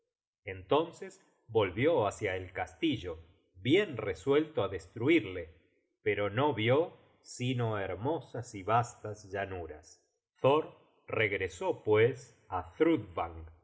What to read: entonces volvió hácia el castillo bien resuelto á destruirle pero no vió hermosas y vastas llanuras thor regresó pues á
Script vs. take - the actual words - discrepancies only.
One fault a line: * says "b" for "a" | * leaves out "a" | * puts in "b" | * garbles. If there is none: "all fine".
* puts in "sino"